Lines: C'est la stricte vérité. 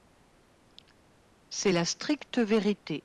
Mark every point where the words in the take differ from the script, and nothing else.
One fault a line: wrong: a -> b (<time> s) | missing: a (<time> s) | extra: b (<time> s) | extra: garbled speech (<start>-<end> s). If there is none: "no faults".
no faults